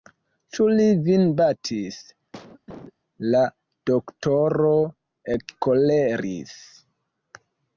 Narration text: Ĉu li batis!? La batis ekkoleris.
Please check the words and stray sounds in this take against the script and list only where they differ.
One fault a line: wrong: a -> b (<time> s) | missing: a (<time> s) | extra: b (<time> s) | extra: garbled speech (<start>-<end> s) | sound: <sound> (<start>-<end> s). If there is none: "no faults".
extra: vin (1.1 s)
sound: cough (2.3-2.9 s)
wrong: batis -> doktoro (3.9 s)